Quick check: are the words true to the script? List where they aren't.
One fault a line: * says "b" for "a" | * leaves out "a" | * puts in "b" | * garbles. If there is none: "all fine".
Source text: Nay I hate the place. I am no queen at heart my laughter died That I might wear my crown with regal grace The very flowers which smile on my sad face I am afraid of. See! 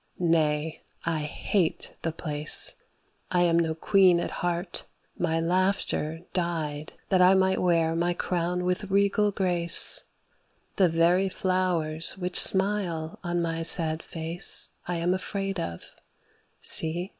all fine